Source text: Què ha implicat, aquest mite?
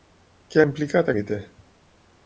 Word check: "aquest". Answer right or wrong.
wrong